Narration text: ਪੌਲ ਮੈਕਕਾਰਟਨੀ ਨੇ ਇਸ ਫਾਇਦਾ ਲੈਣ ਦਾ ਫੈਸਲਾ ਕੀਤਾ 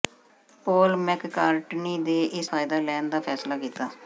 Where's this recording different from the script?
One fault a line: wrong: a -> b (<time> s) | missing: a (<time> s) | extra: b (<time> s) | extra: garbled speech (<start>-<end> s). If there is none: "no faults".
no faults